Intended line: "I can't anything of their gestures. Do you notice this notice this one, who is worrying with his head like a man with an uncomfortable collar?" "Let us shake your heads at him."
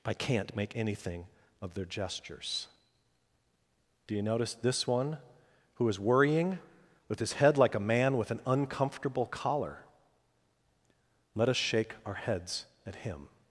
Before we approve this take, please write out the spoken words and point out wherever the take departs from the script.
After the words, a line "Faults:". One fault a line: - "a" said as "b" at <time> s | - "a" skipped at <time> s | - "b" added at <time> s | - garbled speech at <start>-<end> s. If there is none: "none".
"I can't make anything of their gestures. Do you notice this one, who is worrying with his head like a man with an uncomfortable collar?" "Let us shake our heads at him."
Faults:
- "make" added at 0.6 s
- "notice this" skipped at 4.9 s
- "your" said as "our" at 12.0 s